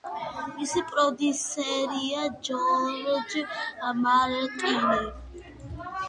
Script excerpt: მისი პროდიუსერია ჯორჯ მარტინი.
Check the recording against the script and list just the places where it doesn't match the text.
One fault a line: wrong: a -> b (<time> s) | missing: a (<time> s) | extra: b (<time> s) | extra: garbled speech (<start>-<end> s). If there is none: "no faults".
no faults